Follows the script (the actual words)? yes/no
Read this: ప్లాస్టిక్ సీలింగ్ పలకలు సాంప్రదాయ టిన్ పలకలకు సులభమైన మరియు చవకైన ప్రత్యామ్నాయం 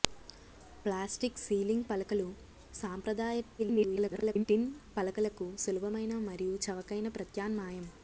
no